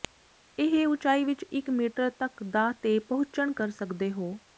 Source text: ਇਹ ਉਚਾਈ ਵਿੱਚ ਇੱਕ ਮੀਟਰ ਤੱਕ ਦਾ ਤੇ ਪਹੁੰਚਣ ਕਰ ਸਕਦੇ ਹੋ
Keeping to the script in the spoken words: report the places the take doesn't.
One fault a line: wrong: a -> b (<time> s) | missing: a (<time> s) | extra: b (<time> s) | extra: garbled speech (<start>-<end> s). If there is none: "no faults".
no faults